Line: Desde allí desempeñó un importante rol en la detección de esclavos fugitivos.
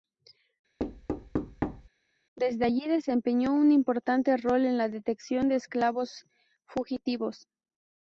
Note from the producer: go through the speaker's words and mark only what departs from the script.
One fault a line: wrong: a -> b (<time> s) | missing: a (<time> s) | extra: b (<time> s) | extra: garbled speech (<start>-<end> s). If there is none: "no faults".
no faults